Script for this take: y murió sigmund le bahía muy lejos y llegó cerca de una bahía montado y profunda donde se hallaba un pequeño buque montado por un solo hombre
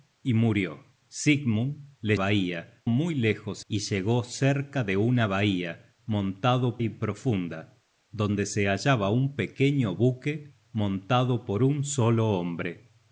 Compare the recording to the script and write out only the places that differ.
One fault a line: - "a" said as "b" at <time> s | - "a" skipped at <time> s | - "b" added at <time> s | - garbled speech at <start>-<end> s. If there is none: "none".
none